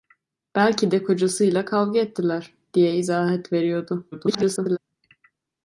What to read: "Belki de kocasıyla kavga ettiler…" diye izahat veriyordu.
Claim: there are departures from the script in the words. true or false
true